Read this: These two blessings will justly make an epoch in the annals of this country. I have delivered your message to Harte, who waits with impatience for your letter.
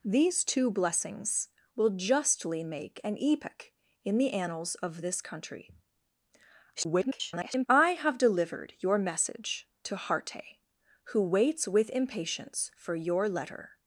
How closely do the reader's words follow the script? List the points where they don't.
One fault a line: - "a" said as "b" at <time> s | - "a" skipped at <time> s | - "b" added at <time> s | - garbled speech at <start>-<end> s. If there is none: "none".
- garbled speech at 6.7-7.7 s